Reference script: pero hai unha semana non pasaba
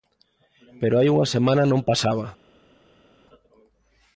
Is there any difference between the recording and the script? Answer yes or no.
no